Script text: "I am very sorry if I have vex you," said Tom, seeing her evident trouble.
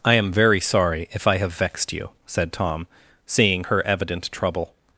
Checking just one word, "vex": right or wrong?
wrong